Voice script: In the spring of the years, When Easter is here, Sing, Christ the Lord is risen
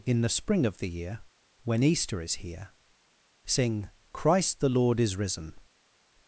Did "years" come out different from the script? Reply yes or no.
yes